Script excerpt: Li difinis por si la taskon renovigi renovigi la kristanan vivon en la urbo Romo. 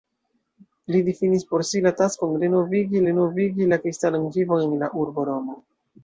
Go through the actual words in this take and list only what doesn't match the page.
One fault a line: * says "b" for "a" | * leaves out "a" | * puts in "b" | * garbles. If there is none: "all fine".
all fine